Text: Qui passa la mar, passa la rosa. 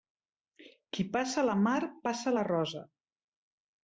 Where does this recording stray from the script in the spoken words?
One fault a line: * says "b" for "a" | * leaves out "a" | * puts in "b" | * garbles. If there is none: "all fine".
all fine